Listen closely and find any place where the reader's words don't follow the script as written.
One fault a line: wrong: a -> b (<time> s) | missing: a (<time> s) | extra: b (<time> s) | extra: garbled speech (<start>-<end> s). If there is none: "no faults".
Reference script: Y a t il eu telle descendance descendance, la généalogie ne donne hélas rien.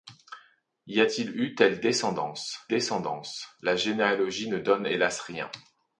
no faults